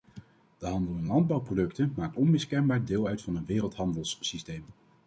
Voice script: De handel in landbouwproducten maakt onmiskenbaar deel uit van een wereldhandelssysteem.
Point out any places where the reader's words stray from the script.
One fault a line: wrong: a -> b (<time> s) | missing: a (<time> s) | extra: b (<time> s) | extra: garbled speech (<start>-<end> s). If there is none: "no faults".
no faults